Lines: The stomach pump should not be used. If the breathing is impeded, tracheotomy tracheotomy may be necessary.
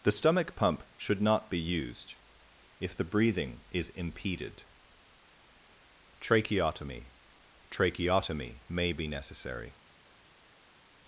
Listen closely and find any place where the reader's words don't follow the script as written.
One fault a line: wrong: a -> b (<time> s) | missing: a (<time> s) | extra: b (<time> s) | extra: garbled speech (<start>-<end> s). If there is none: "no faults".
no faults